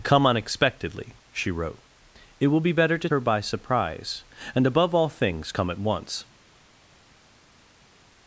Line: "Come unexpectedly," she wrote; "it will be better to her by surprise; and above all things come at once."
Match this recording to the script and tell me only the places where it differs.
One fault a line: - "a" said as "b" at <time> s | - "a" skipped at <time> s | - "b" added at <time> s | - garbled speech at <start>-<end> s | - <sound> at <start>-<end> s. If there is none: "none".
none